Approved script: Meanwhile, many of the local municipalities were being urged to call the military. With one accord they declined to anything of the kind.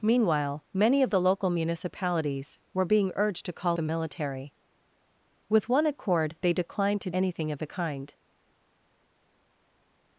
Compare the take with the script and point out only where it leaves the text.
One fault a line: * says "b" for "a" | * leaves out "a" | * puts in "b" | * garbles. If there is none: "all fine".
all fine